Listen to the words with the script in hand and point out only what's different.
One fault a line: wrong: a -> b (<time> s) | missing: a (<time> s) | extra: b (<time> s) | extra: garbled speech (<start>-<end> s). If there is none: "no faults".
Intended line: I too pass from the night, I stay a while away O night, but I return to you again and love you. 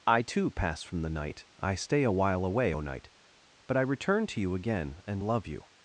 no faults